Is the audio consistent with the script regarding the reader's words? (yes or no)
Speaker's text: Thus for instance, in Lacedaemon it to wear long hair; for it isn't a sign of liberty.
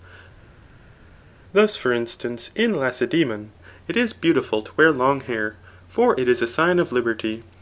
no